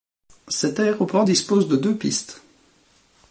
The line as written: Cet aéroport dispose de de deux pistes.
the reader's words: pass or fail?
fail